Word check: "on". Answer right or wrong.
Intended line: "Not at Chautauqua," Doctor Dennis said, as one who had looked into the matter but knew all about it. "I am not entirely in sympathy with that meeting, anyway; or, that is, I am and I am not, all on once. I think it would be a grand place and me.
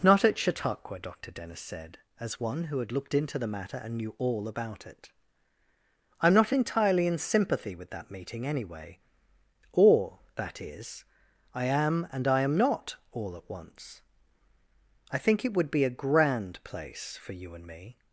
wrong